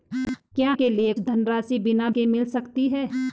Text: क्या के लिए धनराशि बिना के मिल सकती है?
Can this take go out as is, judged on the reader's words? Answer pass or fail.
pass